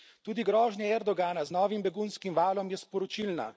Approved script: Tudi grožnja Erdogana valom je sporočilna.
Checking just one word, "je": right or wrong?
right